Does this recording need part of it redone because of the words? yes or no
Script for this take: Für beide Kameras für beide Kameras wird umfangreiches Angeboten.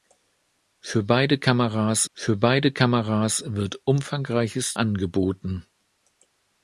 no